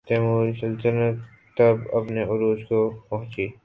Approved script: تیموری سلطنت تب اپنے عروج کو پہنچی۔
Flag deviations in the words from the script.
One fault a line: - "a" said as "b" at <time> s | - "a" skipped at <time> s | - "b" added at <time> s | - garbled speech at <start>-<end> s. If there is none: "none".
none